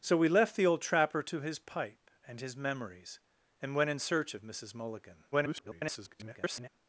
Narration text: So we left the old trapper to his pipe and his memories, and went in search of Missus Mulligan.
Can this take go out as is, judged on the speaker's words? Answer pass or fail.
fail